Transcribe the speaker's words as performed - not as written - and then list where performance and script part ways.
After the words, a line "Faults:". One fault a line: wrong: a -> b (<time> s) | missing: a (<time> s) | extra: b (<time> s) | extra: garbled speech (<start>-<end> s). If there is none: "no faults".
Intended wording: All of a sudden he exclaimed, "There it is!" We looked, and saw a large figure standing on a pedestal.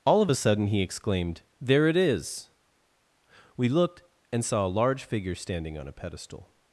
All of a sudden he exclaimed, "There it is!" We looked, and saw a large figure standing on a pedestal.
Faults:
no faults